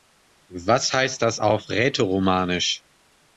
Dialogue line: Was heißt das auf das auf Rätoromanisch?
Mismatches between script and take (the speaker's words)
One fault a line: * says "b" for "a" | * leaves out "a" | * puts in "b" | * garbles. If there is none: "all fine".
* leaves out "das auf"